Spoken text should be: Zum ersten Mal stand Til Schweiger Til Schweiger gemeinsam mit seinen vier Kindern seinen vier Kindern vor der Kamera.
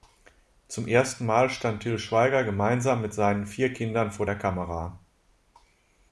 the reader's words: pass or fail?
fail